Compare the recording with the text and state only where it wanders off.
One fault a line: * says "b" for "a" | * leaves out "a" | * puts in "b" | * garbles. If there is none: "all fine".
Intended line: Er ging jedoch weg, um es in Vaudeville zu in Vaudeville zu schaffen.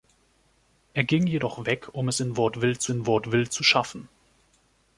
all fine